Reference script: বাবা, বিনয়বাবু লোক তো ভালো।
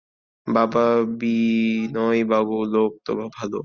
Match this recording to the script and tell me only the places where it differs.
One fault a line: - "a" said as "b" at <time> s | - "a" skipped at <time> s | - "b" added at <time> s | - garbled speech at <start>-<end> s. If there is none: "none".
none